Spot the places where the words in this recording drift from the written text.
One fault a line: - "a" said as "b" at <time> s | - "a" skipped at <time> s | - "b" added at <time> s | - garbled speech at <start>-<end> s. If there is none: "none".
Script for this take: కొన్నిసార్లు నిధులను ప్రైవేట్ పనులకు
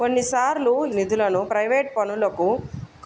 none